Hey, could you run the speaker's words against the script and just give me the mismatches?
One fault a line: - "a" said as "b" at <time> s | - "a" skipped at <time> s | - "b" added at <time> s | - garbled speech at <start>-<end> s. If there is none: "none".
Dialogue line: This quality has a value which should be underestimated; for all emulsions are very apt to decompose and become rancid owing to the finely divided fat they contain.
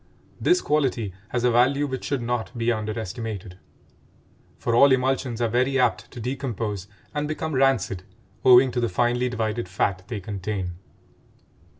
- "not" added at 2.2 s